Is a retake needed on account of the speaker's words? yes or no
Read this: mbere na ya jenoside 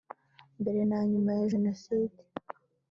yes